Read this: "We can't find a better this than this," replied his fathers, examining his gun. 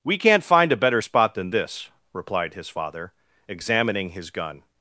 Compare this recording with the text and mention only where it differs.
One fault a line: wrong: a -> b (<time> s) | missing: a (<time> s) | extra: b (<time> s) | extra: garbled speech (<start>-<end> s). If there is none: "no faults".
wrong: this -> spot (1.0 s)
wrong: fathers -> father (2.7 s)